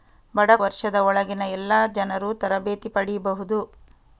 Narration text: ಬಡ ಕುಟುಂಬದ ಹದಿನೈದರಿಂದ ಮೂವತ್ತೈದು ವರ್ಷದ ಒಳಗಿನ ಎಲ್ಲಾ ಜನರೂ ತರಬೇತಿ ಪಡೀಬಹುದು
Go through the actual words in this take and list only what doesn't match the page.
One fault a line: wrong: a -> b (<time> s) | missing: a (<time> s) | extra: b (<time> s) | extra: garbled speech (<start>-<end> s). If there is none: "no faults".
missing: ಕುಟುಂಬದ ಹದಿನೈದರಿಂದ ಮೂವತ್ತೈದು (0.5 s)